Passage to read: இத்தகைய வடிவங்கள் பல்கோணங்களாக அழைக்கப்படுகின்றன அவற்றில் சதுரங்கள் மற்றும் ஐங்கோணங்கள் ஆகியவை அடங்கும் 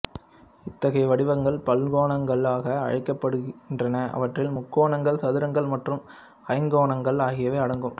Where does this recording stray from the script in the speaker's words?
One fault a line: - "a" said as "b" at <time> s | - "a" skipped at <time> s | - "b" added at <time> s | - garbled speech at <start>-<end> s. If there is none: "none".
- "முக்கோணங்கள்" added at 4.6 s